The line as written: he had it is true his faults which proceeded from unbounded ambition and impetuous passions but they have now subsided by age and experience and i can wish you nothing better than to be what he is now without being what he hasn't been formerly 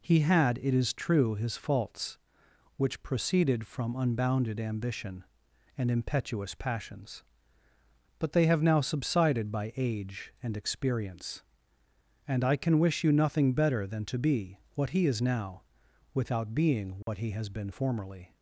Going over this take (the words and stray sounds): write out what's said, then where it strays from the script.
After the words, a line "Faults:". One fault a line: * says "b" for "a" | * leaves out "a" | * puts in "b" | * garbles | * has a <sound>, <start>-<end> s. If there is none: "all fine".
he had it is true his faults which proceeded from unbounded ambition and impetuous passions but they have now subsided by age and experience and i can wish you nothing better than to be what he is now without being what he has been formerly
Faults:
* has a dropout, 17.0-17.1 s
* says "has" for "hasn't"